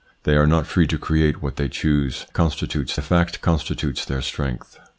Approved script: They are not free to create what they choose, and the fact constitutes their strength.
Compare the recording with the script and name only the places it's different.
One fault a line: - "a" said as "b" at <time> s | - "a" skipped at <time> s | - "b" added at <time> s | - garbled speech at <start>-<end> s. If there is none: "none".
- "and" said as "constitutes" at 2.3 s